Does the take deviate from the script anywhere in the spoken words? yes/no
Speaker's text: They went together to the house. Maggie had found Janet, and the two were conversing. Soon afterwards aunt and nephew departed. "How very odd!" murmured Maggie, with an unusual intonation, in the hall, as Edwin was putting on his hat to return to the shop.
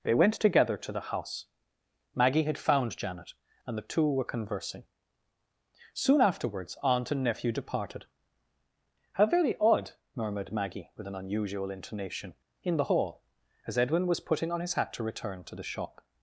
no